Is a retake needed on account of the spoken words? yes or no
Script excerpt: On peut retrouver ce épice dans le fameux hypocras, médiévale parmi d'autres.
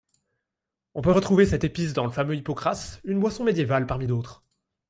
yes